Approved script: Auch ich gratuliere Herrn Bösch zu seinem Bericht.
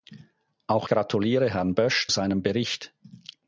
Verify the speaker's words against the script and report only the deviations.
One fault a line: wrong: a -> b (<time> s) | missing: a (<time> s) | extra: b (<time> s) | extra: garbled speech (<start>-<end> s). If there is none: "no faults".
missing: ich (0.9 s)
missing: zu (2.1 s)